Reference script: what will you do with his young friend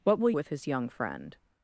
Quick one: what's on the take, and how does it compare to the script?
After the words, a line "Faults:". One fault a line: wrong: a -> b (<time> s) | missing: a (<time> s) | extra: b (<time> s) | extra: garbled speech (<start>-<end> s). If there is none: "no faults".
what will with his young friend
Faults:
missing: you do (0.3 s)